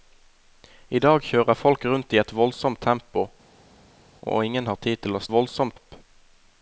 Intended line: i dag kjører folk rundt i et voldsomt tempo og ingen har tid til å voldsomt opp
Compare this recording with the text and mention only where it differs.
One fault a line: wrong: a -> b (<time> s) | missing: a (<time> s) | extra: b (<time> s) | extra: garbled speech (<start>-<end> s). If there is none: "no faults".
no faults